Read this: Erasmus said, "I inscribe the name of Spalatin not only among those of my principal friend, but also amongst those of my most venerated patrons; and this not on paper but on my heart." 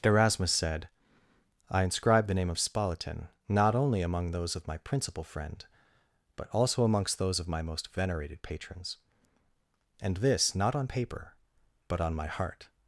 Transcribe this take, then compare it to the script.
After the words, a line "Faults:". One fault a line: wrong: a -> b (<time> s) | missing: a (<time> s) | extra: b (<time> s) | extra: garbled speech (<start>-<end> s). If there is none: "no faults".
Erasmus said, "I inscribe the name of Spalatin not only among those of my principal friend, but also amongst those of my most venerated patrons; and this not on paper but on my heart."
Faults:
no faults